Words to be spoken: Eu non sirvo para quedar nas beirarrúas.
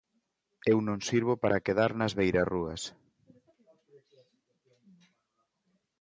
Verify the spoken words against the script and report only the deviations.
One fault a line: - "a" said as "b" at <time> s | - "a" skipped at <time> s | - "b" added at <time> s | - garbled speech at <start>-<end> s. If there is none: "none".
none